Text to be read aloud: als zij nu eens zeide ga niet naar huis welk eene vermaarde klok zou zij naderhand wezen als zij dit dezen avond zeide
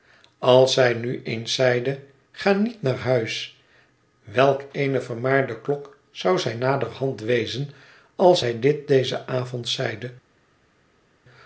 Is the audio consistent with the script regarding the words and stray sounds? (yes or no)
yes